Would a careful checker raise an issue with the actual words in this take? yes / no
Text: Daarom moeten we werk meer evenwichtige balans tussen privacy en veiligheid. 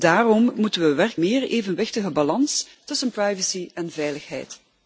no